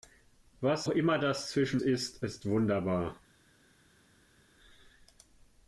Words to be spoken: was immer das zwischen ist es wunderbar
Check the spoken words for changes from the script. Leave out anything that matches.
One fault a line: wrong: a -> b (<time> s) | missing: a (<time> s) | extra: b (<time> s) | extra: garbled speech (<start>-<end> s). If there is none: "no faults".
no faults